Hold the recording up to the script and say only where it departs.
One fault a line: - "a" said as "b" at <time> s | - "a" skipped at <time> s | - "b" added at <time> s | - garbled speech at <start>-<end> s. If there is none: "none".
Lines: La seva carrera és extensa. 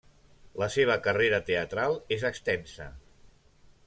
- "teatral" added at 1.5 s